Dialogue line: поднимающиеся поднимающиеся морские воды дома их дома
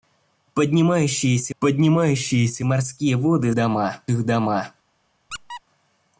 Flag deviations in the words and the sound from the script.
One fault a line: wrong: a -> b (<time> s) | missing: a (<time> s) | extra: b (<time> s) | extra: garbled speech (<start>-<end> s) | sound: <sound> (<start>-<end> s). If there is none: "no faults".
sound: squeak (5.3-5.6 s)